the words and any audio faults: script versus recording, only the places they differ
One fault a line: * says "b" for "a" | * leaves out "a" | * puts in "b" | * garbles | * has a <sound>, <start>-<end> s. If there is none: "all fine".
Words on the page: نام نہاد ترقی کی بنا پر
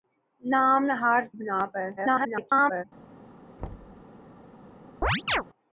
* leaves out "ترقی کی"
* garbles
* has a thud, 3.6-4.0 s
* has a chirp, 5.0-5.4 s